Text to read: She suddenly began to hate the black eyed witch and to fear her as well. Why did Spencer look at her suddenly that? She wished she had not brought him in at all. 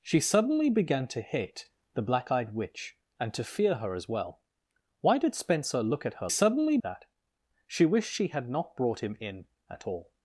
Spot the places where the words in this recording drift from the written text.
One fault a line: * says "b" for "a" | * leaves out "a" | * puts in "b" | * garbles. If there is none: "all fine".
all fine